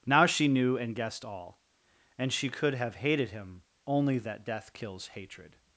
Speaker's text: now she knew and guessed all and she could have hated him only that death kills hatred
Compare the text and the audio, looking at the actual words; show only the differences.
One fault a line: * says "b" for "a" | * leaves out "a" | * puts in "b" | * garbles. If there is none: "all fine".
all fine